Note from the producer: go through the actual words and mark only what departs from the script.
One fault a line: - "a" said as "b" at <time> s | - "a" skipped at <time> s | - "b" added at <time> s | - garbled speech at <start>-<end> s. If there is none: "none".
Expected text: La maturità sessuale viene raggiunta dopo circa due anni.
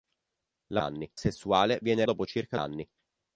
- "maturità" said as "anni" at 0.8 s
- "raggiunta" skipped at 2.0 s
- "due" skipped at 2.6 s